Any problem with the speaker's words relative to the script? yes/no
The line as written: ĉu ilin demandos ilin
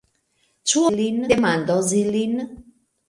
no